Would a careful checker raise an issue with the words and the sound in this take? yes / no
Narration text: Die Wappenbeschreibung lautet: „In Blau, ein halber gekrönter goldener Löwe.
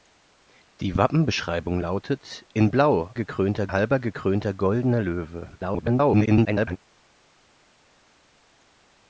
yes